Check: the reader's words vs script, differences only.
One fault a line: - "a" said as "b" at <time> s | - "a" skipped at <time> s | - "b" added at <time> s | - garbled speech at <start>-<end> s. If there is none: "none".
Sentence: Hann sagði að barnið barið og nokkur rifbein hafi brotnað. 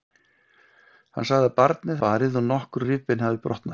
none